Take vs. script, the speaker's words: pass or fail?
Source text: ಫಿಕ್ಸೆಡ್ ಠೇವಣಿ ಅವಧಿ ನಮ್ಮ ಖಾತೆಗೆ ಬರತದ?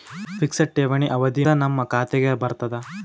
pass